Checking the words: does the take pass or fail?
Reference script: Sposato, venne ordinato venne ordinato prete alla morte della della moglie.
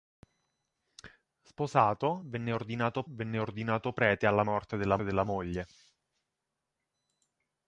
pass